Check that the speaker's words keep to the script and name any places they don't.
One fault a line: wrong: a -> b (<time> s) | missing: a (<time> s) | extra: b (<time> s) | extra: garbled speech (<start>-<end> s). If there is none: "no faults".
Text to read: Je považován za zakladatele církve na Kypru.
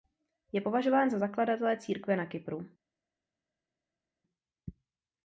no faults